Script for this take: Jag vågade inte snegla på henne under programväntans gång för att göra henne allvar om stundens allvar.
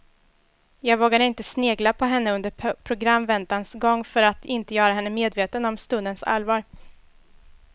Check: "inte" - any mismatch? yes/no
no